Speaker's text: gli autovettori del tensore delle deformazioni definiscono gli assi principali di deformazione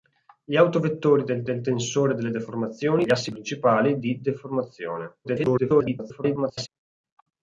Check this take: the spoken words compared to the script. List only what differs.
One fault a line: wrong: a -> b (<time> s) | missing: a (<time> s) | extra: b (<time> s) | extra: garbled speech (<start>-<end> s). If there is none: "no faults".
extra: del (1.4 s)
missing: definiscono (3.0 s)
extra: garbled speech (5.2-6.7 s)